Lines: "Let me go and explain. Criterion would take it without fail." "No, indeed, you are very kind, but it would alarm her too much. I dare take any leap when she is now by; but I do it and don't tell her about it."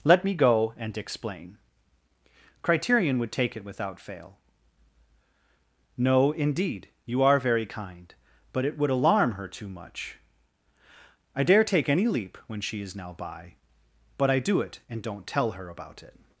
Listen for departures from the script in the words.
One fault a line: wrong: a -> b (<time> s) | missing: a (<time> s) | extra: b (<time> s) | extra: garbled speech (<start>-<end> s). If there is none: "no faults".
no faults